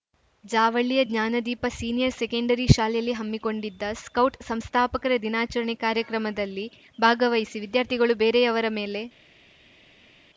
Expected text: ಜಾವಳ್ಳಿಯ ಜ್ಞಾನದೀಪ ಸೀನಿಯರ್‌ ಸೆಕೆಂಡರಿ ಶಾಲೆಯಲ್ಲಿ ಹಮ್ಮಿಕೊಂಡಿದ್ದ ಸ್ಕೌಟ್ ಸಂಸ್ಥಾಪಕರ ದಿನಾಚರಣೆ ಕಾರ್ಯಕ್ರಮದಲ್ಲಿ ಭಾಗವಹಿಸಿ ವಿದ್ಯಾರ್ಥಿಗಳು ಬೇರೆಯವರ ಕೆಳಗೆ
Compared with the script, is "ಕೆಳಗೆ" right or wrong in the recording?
wrong